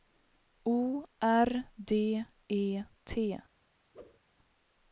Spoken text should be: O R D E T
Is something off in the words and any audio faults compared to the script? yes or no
yes